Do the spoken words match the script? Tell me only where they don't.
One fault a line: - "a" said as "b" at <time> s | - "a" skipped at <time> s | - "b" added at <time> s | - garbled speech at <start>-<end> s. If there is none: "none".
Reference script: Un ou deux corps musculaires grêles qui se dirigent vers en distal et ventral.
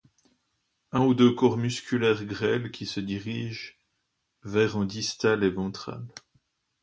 none